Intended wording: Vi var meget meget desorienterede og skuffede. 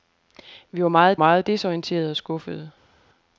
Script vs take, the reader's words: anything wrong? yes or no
no